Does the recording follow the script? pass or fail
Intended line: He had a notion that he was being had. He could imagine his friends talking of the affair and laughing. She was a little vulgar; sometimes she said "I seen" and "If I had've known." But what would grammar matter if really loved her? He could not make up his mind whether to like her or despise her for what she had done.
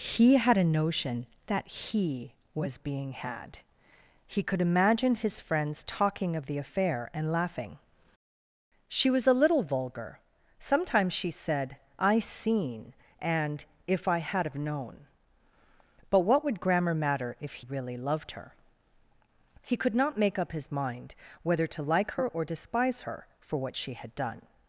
pass